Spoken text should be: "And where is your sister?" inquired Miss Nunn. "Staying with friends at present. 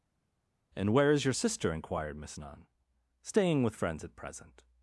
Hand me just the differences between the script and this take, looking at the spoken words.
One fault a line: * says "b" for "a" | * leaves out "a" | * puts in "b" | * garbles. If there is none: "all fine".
all fine